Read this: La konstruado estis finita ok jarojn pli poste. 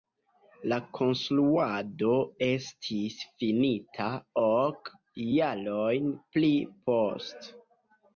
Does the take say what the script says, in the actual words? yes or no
yes